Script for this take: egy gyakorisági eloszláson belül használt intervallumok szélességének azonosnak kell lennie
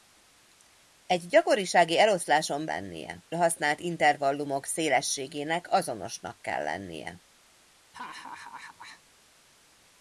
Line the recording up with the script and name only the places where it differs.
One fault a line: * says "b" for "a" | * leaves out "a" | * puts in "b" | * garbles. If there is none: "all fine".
* says "lennie" for "belül"